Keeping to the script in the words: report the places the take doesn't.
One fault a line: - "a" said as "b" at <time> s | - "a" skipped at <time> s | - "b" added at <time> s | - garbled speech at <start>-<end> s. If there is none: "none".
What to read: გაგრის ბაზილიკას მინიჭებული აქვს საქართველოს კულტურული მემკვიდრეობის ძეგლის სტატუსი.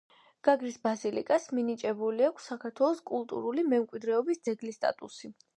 none